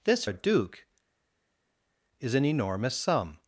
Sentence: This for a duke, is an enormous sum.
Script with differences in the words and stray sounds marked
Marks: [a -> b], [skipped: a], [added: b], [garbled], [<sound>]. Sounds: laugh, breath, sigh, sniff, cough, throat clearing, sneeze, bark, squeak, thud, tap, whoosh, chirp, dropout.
This [skipped: for] a duke, is an enormous sum.